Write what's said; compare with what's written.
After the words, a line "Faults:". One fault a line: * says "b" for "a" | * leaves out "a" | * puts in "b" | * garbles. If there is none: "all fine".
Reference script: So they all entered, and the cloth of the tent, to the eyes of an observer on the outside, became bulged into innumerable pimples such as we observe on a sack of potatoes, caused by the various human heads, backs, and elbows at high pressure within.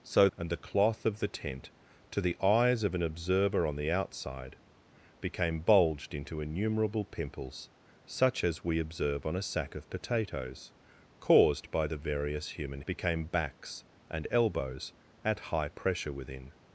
So and the cloth of the tent, to the eyes of an observer on the outside, became bulged into innumerable pimples such as we observe on a sack of potatoes, caused by the various human became, backs, and elbows at high pressure within.
Faults:
* leaves out "they all entered"
* says "became" for "heads"